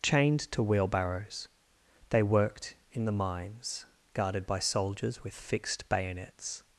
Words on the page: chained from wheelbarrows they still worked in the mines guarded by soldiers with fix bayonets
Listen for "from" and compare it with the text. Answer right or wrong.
wrong